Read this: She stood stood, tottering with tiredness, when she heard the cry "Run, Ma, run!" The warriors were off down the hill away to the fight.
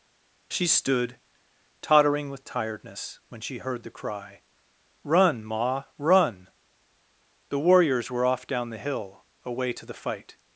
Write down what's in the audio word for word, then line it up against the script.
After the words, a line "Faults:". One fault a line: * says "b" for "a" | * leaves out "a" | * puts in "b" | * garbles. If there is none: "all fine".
She stood, tottering with tiredness, when she heard the cry "Run, Ma, run!" The warriors were off down the hill away to the fight.
Faults:
* leaves out "stood"